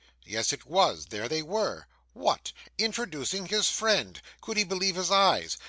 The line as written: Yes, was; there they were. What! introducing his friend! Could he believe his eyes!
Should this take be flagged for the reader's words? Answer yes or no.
yes